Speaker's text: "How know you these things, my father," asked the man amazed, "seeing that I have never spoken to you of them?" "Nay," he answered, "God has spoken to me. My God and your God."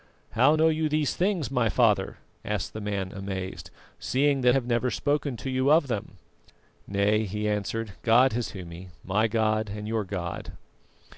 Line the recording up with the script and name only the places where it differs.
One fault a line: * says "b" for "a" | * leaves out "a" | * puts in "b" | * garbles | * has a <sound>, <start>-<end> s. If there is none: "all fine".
* leaves out "I"
* leaves out "spoken"